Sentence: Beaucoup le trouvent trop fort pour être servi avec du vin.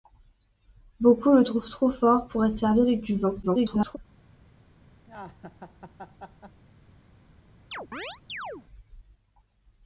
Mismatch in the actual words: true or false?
true